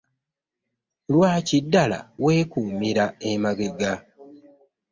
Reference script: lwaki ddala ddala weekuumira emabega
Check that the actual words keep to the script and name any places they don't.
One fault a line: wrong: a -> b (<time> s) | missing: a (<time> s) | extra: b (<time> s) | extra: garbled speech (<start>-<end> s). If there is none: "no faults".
missing: ddala (2.0 s)